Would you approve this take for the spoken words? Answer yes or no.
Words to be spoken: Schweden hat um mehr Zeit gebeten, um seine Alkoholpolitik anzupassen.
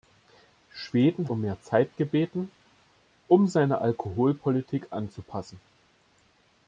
no